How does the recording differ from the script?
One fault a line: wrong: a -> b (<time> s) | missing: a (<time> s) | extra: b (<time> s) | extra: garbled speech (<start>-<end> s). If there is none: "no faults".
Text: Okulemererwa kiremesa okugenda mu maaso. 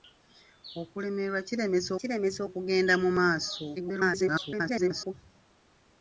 extra: kiremesa (2.0 s)
extra: garbled speech (3.8-5.1 s)